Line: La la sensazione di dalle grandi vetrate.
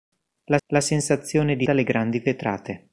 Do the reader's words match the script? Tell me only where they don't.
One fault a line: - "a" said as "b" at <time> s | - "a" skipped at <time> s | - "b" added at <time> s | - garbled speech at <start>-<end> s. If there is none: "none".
none